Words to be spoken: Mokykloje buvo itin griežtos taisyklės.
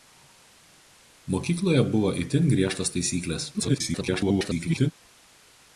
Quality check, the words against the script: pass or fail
fail